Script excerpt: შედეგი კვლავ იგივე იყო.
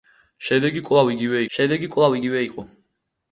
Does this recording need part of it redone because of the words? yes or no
yes